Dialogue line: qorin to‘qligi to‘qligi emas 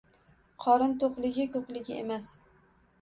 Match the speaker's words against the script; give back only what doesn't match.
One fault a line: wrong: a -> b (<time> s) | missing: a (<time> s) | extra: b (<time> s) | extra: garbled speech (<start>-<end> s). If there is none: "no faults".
no faults